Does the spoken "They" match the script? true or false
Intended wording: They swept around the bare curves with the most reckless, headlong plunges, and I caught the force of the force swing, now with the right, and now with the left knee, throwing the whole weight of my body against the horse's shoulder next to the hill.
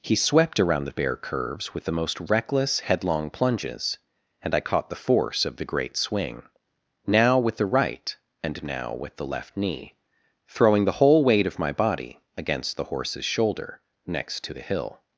false